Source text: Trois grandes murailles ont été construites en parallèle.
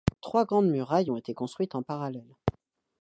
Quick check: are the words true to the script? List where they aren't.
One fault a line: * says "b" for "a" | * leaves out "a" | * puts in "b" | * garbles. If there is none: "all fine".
all fine